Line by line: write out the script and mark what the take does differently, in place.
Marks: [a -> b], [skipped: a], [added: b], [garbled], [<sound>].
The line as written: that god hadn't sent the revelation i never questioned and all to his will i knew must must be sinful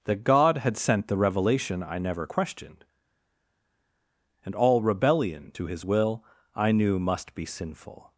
that god [hadn't -> had] sent the revelation i never questioned and all [added: rebellion] to his will i knew must [skipped: must] be sinful